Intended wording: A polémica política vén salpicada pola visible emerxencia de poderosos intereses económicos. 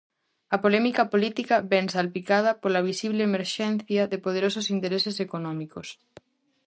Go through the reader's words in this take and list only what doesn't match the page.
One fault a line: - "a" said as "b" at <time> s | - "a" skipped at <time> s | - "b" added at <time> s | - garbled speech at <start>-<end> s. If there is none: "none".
none